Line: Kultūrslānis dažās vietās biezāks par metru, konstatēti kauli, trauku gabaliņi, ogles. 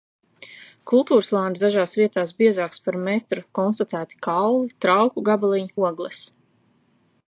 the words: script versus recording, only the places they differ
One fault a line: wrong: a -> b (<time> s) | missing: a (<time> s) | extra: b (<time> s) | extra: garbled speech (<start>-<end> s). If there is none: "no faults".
no faults